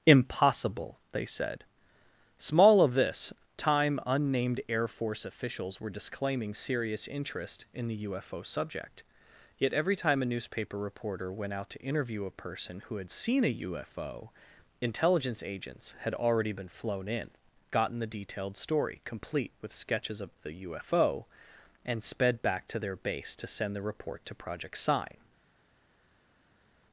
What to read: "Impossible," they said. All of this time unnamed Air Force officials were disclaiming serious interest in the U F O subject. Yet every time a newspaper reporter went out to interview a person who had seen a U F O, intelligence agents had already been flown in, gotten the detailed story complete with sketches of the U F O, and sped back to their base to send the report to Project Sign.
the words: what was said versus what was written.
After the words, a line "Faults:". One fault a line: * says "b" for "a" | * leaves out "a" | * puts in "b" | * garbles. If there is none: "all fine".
"Impossible," they said. Small of this time unnamed Air Force officials were disclaiming serious interest in the U F O subject. Yet every time a newspaper reporter went out to interview a person who had seen a U F O, intelligence agents had already been flown in, gotten the detailed story complete with sketches of the U F O, and sped back to their base to send the report to Project Sign.
Faults:
* says "Small" for "All"